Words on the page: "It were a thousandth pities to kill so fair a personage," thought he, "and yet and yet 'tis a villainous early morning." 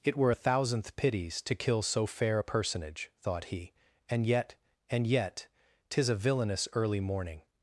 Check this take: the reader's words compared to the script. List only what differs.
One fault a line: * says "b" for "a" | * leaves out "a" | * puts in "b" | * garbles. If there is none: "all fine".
all fine